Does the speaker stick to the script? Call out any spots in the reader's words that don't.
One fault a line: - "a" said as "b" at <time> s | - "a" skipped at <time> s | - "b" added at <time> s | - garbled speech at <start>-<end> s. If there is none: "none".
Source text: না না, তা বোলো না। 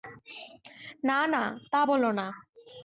none